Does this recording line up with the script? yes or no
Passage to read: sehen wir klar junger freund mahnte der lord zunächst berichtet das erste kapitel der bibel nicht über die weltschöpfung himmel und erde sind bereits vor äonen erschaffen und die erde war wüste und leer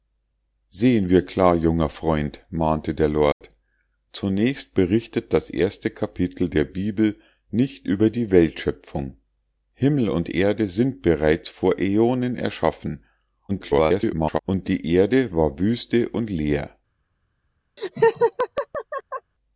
no